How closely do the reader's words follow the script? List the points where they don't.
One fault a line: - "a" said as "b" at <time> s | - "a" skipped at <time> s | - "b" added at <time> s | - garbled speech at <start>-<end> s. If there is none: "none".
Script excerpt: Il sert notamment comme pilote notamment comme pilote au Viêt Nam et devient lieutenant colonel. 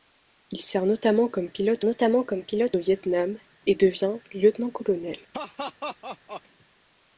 none